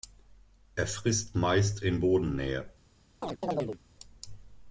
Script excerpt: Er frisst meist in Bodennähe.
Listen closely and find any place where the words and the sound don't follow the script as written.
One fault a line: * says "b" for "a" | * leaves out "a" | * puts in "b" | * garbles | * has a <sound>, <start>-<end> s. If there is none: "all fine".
* has a chirp, 3.2-3.8 s